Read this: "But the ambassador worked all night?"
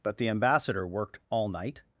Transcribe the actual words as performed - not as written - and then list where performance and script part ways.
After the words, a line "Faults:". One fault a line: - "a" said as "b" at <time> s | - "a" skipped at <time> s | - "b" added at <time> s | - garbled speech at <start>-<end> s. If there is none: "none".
"But the ambassador worked all night?"
Faults:
none